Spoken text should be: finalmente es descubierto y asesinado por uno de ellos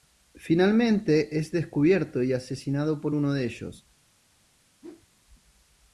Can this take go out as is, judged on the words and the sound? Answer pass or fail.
fail